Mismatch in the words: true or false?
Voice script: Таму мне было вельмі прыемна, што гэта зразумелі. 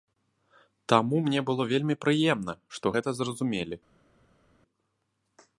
false